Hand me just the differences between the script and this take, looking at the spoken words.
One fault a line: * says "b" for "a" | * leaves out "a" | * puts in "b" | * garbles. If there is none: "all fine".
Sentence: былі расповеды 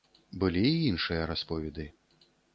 * puts in "і іншыя"